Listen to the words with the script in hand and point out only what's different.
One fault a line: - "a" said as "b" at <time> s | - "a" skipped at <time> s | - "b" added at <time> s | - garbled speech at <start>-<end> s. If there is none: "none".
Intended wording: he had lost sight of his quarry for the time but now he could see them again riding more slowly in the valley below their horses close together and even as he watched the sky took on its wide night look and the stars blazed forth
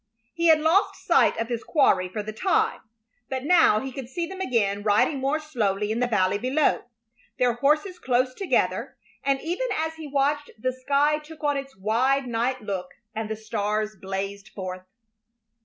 none